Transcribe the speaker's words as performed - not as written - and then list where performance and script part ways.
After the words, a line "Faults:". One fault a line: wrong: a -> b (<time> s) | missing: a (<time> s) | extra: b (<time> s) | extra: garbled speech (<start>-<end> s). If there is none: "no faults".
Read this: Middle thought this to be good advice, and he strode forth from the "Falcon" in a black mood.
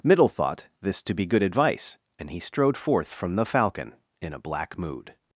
Middle thought this to be good advice, and he strode forth from the "Falcon" in a black mood.
Faults:
no faults